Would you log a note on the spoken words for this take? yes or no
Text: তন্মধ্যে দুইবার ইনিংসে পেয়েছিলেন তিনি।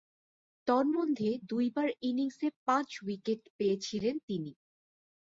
yes